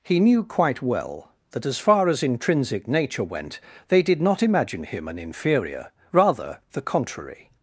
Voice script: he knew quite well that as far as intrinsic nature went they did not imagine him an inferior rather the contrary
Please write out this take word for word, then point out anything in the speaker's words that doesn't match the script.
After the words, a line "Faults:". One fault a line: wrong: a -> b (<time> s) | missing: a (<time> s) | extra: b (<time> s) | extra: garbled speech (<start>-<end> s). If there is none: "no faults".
he knew quite well that as far as intrinsic nature went they did not imagine him an inferior rather the contrary
Faults:
no faults